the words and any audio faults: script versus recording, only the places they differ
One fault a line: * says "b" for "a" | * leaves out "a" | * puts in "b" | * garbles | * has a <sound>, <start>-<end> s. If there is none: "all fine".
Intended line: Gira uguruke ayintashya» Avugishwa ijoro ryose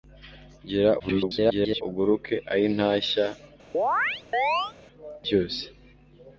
* garbles
* leaves out "Avugishwa ijoro"
* has a chirp, 3.7-4.7 s